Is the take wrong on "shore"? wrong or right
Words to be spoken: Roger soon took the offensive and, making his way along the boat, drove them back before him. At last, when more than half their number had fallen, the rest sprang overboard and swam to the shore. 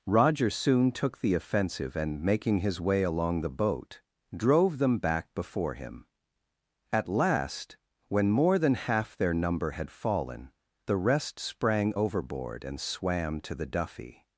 wrong